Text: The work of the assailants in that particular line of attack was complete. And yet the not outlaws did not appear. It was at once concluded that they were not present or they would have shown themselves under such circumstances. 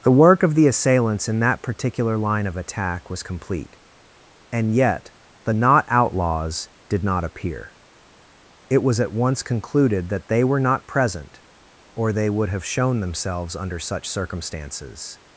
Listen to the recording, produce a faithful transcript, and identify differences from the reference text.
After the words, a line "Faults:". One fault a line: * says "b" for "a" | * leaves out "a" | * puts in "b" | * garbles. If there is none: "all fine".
The work of the assailants in that particular line of attack was complete. And yet the not outlaws did not appear. It was at once concluded that they were not present or they would have shown themselves under such circumstances.
Faults:
all fine